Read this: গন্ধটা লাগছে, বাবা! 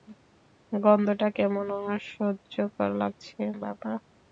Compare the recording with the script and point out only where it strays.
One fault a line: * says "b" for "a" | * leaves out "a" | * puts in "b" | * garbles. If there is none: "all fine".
* puts in "কেমন অসহ্যকর"